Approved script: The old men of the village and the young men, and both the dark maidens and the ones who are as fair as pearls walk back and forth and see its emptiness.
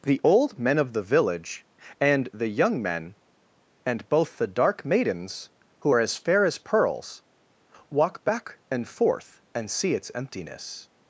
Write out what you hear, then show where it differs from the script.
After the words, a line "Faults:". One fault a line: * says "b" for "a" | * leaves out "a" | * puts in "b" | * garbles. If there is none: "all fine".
The old men of the village and the young men, and both the dark maidens who are as fair as pearls walk back and forth and see its emptiness.
Faults:
* leaves out "and the ones"